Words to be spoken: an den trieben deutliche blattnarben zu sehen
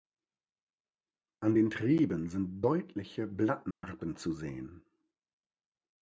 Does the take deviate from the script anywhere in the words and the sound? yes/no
yes